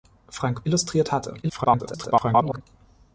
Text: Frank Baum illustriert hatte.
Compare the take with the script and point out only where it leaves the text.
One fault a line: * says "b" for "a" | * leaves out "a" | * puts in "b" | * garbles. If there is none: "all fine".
* leaves out "Baum"
* garbles